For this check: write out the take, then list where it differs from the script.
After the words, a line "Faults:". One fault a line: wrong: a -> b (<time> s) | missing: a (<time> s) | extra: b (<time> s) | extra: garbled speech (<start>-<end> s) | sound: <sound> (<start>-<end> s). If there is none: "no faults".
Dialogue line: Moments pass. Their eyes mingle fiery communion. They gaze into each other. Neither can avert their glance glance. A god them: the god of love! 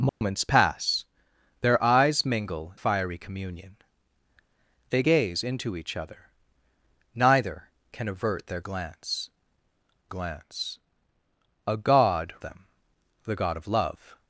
Moments pass. Their eyes mingle fiery communion. They gaze into each other. Neither can avert their glance glance. A god them: the god of love!
Faults:
sound: dropout (0.1-0.2 s)